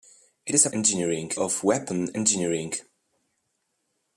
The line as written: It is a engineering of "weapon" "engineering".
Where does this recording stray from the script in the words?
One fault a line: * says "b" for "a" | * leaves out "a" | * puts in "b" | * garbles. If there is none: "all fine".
all fine